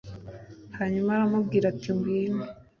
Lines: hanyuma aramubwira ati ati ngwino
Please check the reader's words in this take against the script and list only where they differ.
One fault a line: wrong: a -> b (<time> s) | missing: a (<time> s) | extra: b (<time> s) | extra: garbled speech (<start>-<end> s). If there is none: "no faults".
missing: ati (1.9 s)